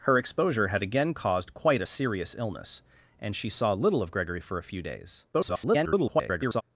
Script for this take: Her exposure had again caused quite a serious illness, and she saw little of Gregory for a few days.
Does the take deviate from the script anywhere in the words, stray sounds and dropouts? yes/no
yes